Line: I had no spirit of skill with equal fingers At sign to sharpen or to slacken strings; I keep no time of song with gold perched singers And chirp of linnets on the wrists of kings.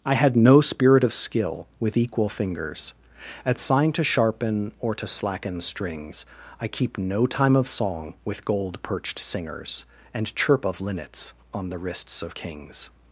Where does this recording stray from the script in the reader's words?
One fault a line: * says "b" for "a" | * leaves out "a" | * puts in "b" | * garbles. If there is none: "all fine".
all fine